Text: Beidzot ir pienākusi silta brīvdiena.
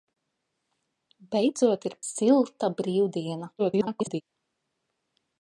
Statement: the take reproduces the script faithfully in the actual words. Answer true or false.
false